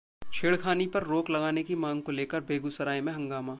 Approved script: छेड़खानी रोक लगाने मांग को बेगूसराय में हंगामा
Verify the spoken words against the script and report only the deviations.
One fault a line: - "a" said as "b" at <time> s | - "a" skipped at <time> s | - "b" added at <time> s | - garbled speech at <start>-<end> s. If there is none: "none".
- "पर" added at 0.9 s
- "की" added at 1.6 s
- "लेकर" added at 2.1 s